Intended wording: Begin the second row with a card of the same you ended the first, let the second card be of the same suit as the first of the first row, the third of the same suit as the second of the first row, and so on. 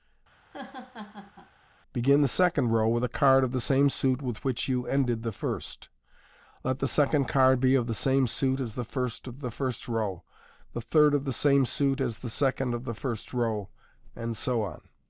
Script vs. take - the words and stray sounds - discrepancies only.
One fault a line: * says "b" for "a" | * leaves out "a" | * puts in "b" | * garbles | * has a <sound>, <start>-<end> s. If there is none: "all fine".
* has a laugh, 0.4-1.5 s
* puts in "suit with which"